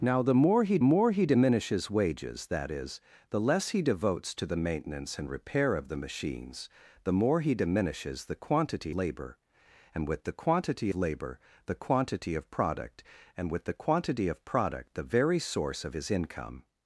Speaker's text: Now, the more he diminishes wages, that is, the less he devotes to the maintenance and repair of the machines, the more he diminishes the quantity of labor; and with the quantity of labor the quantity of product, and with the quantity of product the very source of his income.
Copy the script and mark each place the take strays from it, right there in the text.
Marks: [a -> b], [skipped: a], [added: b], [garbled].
Now, the more he [added: more he] diminishes wages, that is, the less he devotes to the maintenance and repair of the machines, the more he diminishes the quantity [skipped: of] labor; and with the quantity [skipped: of] labor the quantity of product, and with the quantity of product the very source of his income.